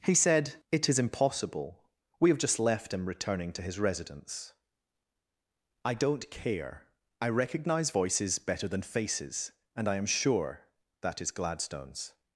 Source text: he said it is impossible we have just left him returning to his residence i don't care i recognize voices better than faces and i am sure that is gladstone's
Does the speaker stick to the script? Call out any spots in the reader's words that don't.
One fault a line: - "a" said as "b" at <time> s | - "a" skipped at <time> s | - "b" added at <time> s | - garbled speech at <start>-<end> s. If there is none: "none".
none